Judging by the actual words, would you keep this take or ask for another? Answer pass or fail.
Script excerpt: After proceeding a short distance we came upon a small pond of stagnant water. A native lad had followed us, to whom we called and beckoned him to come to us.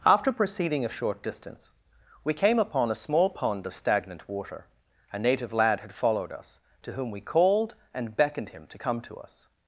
pass